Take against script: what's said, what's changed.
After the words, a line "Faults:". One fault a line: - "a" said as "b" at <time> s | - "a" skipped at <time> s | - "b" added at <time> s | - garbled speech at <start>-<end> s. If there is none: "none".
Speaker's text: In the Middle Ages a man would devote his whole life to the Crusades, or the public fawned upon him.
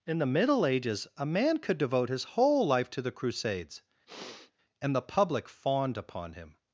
In the Middle Ages a man could devote his whole life to the Crusades, and the public fawned upon him.
Faults:
- "would" said as "could" at 1.6 s
- "or" said as "and" at 4.8 s